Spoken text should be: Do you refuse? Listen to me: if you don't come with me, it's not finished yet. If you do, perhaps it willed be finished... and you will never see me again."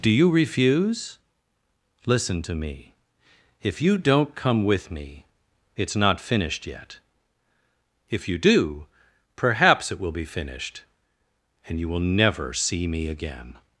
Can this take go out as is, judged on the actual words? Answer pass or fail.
fail